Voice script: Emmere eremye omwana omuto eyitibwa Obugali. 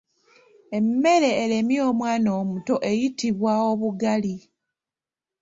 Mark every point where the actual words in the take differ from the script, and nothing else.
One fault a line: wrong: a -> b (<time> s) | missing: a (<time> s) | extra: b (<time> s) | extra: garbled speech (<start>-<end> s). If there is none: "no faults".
no faults